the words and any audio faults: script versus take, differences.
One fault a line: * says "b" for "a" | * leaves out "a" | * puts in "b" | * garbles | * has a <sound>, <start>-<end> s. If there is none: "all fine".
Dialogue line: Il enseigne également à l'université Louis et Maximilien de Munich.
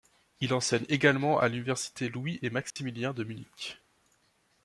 * has a dropout, 2.7-2.8 s